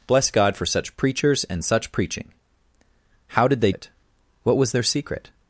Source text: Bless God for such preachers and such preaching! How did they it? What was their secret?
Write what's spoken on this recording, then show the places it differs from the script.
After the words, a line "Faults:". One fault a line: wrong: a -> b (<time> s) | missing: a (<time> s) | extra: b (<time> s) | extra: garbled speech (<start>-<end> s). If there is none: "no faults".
Bless God for such preachers and such preaching! How did they it? What was their secret?
Faults:
no faults